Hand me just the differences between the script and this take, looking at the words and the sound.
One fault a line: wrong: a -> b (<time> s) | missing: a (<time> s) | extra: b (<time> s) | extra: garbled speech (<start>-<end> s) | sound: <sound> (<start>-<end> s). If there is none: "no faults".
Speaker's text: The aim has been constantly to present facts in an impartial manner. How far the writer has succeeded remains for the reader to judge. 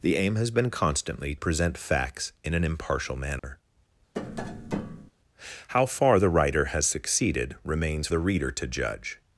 missing: to (1.4 s)
sound: dropout (3.4-3.4 s)
sound: tap (4.1-5.1 s)
missing: for (8.1 s)